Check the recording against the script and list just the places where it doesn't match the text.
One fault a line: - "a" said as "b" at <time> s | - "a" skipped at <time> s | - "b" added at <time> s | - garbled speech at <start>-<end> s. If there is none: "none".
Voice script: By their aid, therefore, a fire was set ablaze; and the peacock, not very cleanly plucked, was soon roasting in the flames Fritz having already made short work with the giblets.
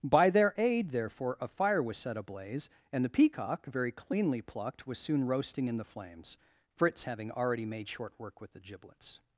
- "not" skipped at 3.7 s